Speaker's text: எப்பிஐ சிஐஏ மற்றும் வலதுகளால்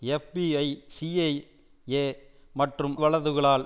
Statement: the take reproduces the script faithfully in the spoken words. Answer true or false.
true